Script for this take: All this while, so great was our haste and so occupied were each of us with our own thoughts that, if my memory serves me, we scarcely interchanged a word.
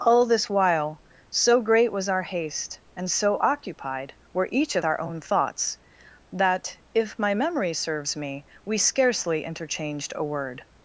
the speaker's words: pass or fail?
fail